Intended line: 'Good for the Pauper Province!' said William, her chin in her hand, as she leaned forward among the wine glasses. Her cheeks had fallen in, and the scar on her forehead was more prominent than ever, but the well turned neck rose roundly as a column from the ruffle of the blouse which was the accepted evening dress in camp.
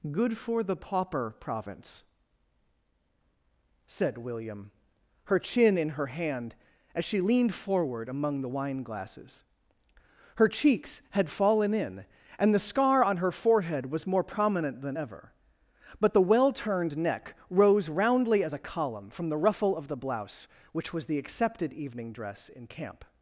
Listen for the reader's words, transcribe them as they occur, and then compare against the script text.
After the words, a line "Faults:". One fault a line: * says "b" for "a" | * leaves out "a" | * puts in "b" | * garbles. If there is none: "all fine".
'Good for the Pauper Province!' said William, her chin in her hand, as she leaned forward among the wine glasses. Her cheeks had fallen in, and the scar on her forehead was more prominent than ever, but the well turned neck rose roundly as a column from the ruffle of the blouse which was the accepted evening dress in camp.
Faults:
all fine